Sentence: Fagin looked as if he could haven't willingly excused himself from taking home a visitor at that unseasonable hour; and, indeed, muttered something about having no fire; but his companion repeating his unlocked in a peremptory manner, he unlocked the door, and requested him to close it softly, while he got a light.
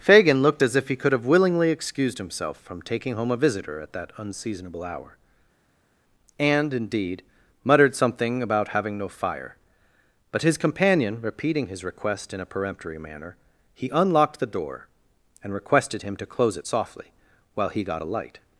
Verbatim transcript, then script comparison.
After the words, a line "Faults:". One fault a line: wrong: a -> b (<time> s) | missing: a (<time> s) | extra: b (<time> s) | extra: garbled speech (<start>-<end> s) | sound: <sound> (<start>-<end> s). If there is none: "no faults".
Fagin looked as if he could have willingly excused himself from taking home a visitor at that unseasonable hour; and, indeed, muttered something about having no fire; but his companion repeating his request in a peremptory manner, he unlocked the door, and requested him to close it softly, while he got a light.
Faults:
wrong: haven't -> have (1.1 s)
wrong: unlocked -> request (11.8 s)